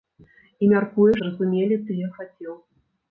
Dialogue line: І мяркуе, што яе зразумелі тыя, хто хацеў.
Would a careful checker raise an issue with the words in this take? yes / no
yes